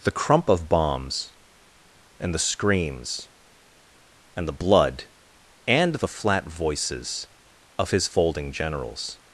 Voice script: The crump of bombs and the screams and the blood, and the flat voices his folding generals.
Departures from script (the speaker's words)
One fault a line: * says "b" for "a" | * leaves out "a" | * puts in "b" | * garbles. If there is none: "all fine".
* puts in "of"